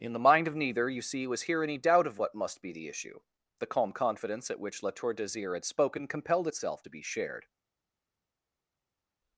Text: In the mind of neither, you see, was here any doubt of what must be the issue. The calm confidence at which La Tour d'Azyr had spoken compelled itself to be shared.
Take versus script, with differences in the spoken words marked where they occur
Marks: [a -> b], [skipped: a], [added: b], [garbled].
In the mind of neither, you see, was here any doubt of what must be the issue. The calm confidence at which La Tour d'Azyr had spoken compelled itself to be shared.